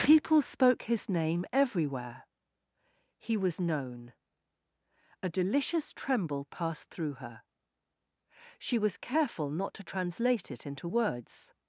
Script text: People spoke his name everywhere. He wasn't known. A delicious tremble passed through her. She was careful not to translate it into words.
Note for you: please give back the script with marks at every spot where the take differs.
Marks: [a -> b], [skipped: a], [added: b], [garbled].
People spoke his name everywhere. He [wasn't -> was] known. A delicious tremble passed through her. She was careful not to translate it into words.